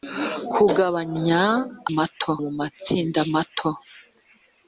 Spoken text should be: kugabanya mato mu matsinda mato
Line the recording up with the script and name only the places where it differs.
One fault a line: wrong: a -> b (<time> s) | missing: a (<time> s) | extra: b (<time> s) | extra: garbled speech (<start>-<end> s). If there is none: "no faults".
no faults